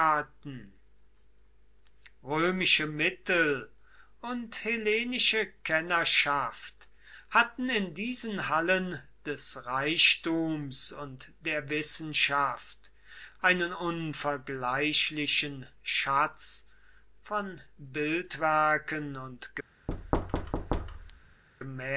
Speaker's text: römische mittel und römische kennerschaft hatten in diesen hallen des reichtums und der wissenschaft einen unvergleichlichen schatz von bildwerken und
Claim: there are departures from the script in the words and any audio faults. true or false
true